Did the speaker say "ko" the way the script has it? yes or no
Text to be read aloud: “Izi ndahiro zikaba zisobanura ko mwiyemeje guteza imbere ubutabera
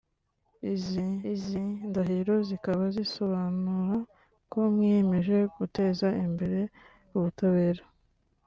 yes